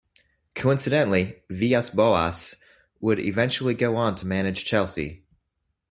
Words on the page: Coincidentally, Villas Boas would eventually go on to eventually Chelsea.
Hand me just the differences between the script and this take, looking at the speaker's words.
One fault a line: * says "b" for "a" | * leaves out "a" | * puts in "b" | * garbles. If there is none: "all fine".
* says "manage" for "eventually"